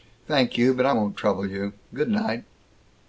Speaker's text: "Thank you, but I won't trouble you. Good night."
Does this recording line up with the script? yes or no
yes